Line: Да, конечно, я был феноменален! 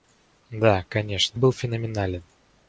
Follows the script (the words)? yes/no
no